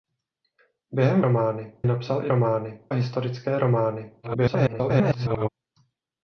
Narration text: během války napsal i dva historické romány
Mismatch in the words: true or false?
true